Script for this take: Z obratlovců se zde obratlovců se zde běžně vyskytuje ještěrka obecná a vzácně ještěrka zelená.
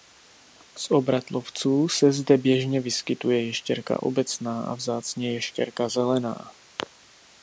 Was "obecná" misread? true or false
false